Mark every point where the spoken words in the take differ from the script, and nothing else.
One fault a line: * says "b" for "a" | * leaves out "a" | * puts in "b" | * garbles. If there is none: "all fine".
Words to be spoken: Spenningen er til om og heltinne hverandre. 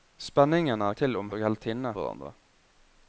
all fine